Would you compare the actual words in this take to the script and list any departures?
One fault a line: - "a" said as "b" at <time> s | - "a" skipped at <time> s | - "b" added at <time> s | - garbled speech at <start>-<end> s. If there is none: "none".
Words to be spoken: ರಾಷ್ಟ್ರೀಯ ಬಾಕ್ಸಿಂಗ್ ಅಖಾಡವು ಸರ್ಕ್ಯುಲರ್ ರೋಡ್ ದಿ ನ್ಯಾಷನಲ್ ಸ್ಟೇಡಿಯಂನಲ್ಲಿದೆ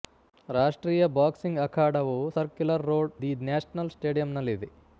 none